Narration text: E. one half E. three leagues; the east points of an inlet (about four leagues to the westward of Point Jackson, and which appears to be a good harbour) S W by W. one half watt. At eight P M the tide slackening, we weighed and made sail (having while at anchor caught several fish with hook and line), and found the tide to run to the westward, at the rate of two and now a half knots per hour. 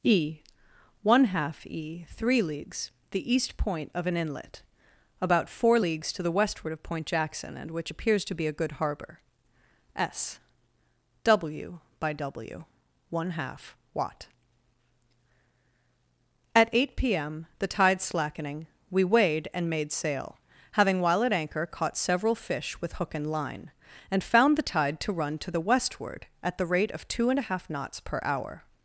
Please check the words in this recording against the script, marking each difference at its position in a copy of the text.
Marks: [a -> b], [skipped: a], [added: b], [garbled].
E. one half E. three leagues; the east [points -> point] of an inlet (about four leagues to the westward of Point Jackson, and which appears to be a good harbour) S W by W. one half watt. At eight P M the tide slackening, we weighed and made sail (having while at anchor caught several fish with hook and line), and found the tide to run to the westward, at the rate of two and [skipped: now] a half knots per hour.